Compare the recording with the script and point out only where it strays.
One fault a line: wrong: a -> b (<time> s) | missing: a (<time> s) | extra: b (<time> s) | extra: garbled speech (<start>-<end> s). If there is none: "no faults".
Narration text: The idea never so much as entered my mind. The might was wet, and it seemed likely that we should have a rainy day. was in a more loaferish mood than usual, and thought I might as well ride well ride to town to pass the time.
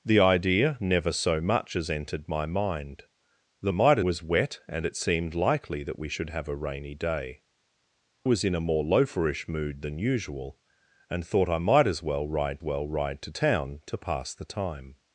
no faults